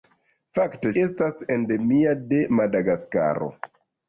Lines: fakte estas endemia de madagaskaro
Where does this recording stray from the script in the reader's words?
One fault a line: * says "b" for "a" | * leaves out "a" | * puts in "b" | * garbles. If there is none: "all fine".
all fine